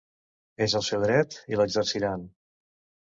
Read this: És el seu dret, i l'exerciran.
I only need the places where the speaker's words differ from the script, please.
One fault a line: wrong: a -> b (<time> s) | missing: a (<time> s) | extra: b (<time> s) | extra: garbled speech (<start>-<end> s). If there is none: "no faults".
no faults